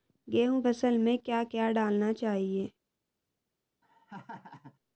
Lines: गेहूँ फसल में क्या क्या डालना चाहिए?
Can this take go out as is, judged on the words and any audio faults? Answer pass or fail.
fail